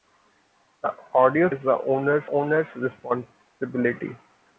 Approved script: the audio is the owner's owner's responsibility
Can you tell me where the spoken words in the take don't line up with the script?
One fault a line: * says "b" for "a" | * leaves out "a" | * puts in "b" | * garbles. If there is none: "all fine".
all fine